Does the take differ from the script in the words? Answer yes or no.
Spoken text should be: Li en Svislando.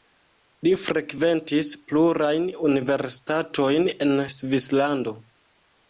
yes